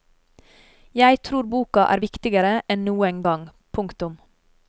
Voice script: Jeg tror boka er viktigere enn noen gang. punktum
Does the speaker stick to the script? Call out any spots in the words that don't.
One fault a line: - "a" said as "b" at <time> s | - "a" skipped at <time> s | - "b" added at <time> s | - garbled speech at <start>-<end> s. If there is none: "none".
none